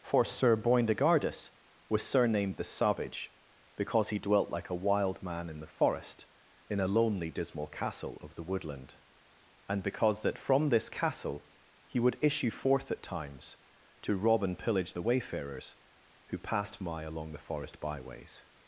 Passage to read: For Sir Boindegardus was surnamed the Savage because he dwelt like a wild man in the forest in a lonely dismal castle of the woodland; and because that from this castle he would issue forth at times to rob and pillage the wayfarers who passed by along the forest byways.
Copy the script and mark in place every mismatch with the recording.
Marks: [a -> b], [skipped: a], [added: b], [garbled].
For Sir Boindegardus was surnamed the Savage because he dwelt like a wild man in the forest in a lonely dismal castle of the woodland; and because that from this castle he would issue forth at times to rob and pillage the wayfarers who passed [by -> my] along the forest byways.